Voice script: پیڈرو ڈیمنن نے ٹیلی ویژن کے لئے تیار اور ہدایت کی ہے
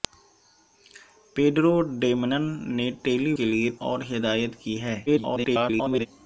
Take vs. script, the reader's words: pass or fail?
fail